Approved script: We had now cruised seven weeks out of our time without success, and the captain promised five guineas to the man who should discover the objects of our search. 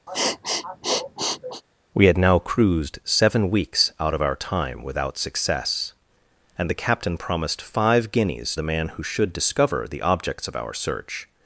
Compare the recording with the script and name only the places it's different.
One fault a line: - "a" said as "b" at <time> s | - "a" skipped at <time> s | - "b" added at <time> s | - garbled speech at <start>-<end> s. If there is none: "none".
- "to" skipped at 8.5 s